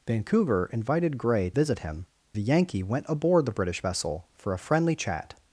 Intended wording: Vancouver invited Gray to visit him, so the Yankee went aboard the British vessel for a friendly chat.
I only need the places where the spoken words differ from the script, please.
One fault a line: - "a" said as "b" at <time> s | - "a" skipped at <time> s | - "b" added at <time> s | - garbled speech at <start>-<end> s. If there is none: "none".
- "to" skipped at 1.5 s
- "so" skipped at 2.1 s